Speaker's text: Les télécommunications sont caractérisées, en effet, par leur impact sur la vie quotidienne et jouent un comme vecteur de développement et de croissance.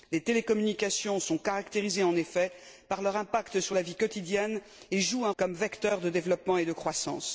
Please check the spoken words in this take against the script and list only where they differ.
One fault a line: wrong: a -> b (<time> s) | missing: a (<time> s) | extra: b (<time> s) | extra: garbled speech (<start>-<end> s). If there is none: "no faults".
no faults